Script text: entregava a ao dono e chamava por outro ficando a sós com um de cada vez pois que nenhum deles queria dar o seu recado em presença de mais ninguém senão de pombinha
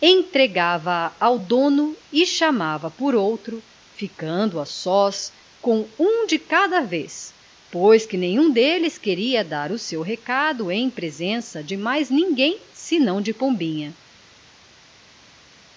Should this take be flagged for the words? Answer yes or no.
no